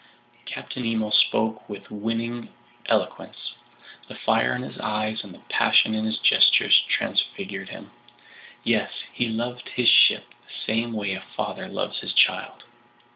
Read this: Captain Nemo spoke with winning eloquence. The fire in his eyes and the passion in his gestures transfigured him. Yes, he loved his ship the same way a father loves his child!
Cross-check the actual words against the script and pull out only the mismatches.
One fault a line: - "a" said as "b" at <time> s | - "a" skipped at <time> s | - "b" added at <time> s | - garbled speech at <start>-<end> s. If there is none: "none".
none